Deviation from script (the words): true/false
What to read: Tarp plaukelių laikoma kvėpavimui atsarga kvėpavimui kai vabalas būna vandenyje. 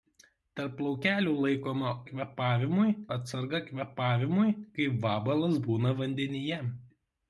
false